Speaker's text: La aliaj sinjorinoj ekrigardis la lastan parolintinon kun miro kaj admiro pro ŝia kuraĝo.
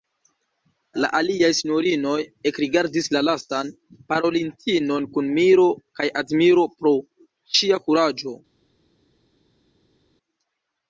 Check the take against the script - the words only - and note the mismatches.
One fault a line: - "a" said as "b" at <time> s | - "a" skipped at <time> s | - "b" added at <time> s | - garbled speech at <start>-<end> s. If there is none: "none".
none